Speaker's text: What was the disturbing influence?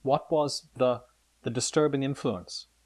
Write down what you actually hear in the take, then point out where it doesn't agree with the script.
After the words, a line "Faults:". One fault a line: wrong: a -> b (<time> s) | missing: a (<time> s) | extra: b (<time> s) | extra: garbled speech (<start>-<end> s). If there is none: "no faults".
What was the the disturbing influence?
Faults:
extra: the (1.4 s)